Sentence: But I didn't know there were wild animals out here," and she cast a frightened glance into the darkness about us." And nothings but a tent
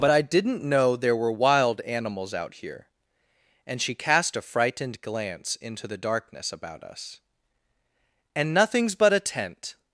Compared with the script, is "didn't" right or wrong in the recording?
right